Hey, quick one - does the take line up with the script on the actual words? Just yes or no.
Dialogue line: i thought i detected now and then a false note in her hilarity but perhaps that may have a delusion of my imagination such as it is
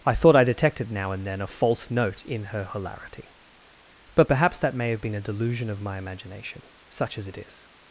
no